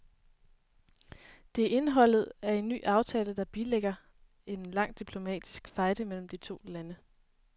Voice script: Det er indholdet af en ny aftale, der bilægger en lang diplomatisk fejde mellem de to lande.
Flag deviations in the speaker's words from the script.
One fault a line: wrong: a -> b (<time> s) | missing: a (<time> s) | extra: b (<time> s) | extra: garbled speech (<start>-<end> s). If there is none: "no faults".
no faults